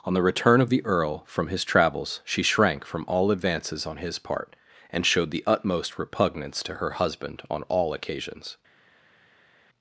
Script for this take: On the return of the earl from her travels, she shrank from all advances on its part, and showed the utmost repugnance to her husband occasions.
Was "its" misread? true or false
true